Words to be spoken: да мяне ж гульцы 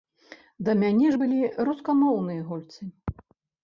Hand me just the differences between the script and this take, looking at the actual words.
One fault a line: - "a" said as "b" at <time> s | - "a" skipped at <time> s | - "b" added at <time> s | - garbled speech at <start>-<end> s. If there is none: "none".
- "былі рускамоўныя" added at 1.2 s